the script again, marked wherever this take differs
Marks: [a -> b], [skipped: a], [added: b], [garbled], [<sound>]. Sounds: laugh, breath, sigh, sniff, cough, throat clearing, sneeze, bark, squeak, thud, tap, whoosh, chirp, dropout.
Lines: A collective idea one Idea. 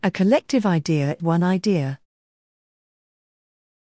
A collective idea one Idea.